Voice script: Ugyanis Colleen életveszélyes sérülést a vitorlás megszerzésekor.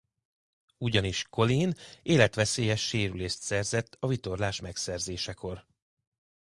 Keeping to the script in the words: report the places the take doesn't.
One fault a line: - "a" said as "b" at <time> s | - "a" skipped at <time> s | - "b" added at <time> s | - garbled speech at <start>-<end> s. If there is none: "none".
- "szerzett" added at 3.4 s